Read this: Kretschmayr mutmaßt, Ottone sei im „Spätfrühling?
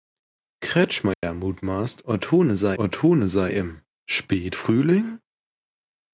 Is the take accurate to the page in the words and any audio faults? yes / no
no